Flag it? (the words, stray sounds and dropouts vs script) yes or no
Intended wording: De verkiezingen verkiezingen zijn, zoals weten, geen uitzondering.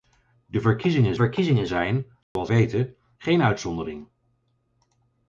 yes